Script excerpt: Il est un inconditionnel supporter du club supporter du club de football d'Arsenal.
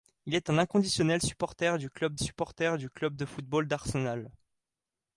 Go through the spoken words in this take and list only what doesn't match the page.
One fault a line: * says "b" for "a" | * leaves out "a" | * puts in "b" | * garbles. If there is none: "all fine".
all fine